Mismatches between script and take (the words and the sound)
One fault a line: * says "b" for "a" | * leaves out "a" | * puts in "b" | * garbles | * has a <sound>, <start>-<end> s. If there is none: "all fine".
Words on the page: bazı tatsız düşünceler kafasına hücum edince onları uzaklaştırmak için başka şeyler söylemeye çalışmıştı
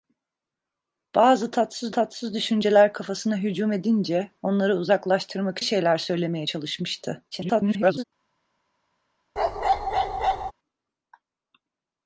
* puts in "tatsız"
* leaves out "için başka"
* garbles
* has a bark, 9.4-10.5 s